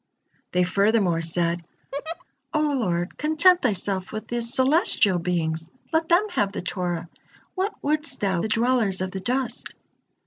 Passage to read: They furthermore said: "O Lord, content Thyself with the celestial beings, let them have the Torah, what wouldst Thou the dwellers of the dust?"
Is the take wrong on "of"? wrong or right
right